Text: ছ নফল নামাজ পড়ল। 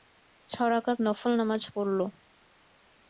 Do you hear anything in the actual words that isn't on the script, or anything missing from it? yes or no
yes